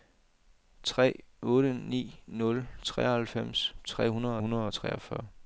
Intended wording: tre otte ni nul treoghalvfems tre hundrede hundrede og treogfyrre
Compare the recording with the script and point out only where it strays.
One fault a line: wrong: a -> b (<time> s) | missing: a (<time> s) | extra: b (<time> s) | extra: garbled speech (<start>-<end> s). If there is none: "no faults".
no faults